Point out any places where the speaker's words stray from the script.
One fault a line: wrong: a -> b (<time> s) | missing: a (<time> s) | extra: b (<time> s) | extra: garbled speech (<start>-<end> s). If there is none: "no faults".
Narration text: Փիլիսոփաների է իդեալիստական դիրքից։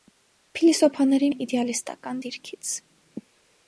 no faults